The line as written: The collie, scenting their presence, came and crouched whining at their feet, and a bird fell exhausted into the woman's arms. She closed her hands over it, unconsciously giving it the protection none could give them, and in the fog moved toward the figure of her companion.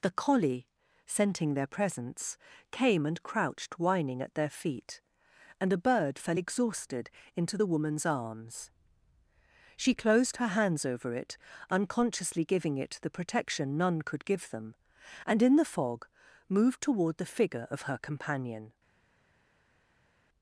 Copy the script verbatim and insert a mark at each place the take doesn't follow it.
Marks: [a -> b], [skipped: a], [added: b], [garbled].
The collie, scenting their presence, came and crouched whining at their feet, and a bird fell exhausted into the woman's arms. She closed her hands over it, unconsciously giving it the protection none could give them, and in the fog moved toward the figure of her companion.